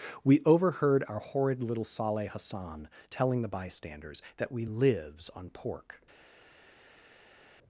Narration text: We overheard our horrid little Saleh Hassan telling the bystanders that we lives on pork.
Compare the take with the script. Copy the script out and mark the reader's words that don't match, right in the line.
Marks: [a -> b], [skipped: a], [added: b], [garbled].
We overheard our horrid little Saleh Hassan telling the bystanders that we lives on pork.